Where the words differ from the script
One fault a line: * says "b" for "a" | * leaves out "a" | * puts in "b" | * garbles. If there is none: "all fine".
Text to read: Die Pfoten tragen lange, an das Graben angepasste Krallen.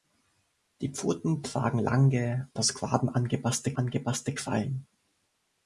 * leaves out "an"
* puts in "angepasste"